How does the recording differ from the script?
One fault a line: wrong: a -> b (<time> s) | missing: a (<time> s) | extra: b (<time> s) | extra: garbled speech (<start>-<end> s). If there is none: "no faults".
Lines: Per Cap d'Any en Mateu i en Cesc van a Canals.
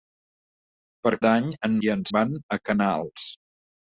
missing: Cap (1.1 s)
missing: Mateu (1.7 s)
missing: Cesc (2.1 s)